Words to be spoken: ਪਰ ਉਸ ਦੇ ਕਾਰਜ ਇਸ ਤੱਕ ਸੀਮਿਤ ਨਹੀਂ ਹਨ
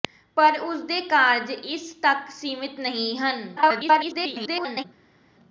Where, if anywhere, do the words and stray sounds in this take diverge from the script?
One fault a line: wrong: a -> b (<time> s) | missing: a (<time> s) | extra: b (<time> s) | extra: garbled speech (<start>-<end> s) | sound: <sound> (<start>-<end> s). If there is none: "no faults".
extra: garbled speech (3.6-4.8 s)